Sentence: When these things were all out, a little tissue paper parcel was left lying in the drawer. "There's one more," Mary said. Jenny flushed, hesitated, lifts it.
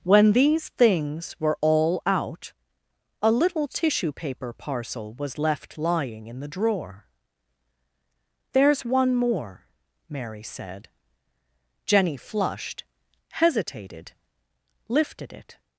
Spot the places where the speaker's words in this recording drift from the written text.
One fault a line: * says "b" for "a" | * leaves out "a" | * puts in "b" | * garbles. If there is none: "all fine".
* says "lifted" for "lifts"